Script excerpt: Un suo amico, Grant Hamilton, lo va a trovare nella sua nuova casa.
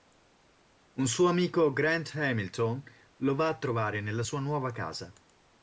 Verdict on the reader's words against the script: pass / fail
pass